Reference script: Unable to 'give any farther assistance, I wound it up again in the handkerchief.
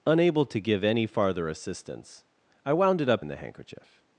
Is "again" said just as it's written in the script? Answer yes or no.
no